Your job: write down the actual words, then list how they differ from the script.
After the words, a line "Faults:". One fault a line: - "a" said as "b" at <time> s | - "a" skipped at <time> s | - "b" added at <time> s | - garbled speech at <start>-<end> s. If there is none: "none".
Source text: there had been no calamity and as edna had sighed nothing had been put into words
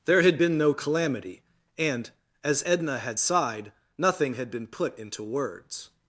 there had been no calamity and as edna had sighed nothing had been put into words
Faults:
none